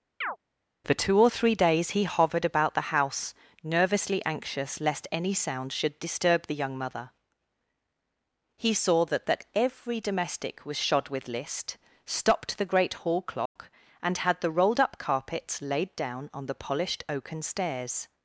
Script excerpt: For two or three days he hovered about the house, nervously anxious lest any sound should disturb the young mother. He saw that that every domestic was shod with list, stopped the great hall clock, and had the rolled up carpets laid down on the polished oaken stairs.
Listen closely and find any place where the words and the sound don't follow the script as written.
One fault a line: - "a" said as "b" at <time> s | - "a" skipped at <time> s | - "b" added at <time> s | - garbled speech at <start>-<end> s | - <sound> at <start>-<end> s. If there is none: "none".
- chirp at 0.2-0.4 s
- dropout at 13.5-13.6 s